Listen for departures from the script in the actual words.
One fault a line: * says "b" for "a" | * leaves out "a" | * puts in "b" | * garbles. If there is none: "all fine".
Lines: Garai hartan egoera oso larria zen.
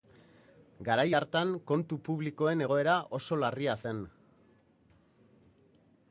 * puts in "kontu publikoen"